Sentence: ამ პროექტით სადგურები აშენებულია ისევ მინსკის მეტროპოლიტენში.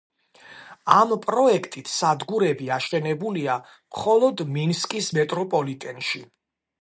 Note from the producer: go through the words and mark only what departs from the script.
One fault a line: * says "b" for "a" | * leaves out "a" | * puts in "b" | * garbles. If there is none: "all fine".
* says "მხოლოდ" for "ისევ"